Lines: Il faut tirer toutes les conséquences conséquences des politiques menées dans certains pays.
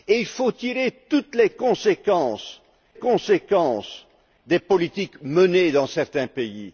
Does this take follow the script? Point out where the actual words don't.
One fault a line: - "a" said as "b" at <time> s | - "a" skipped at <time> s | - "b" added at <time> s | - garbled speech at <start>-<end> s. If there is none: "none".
none